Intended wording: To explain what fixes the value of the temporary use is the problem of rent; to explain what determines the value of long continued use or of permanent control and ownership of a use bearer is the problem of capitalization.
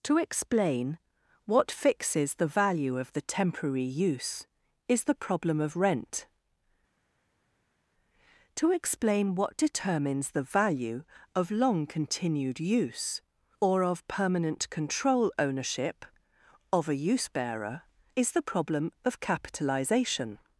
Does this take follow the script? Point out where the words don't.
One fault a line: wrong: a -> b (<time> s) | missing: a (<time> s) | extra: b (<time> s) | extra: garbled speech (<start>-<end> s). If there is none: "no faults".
missing: and (15.3 s)